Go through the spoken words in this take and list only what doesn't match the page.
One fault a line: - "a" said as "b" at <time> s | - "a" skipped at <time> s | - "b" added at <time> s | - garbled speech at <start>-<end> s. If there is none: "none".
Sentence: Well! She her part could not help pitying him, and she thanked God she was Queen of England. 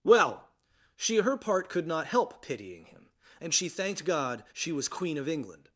none